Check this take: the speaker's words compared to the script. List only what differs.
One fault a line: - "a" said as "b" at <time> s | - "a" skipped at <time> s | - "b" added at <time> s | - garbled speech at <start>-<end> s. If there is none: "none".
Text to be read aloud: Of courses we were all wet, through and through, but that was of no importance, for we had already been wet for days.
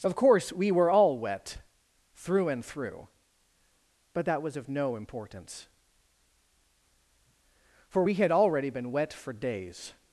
- "courses" said as "course" at 0.1 s